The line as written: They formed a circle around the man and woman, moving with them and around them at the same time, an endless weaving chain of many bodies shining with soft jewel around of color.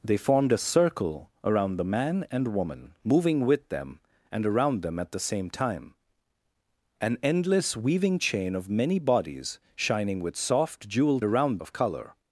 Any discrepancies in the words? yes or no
no